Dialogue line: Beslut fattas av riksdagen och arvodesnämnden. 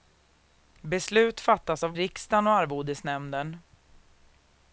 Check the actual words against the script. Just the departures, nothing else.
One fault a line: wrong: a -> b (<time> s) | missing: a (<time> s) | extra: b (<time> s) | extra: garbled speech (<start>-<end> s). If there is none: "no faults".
no faults